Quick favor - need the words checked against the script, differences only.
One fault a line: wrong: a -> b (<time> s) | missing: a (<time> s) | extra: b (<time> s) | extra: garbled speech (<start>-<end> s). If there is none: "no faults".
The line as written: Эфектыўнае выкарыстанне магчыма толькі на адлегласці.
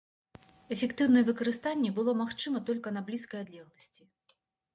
extra: было (2.0 s)
extra: блізкай (3.1 s)